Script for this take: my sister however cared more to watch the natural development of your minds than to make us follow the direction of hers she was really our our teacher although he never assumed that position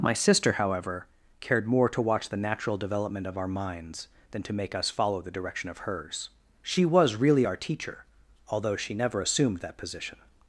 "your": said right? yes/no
no